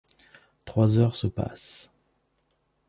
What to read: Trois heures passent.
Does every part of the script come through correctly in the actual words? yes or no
no